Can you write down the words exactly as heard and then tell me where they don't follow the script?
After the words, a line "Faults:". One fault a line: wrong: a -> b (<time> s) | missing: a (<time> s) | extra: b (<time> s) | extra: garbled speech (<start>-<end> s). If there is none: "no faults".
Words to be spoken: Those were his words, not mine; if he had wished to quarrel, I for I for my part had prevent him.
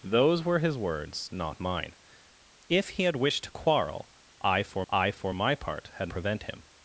Those were his words, not mine; if he had wished to quarrel, I for I for my part had prevent him.
Faults:
no faults